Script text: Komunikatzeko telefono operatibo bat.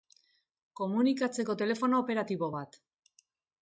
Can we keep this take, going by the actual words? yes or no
yes